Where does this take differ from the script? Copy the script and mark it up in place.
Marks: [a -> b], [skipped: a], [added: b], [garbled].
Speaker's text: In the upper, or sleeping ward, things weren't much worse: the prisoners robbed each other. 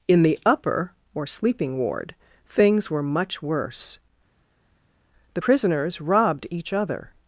In the upper, or sleeping ward, things [weren't -> were] much worse: the prisoners robbed each other.